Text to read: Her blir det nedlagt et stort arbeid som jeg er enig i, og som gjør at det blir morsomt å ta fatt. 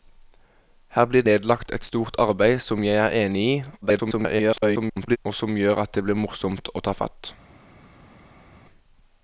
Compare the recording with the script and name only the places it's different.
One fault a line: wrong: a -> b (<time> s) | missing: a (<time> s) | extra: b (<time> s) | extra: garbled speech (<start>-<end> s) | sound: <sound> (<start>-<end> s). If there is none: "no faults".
missing: det (1.2 s)
extra: garbled speech (3.8-5.2 s)